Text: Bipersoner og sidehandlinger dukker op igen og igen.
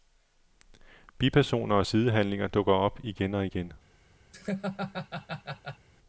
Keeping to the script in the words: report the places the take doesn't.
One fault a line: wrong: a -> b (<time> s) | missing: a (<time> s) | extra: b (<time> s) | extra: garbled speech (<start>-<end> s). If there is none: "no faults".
no faults